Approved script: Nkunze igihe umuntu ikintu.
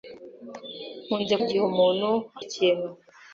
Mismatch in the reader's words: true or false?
false